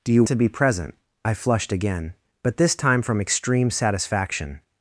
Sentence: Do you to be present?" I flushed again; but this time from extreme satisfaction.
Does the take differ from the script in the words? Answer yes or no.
no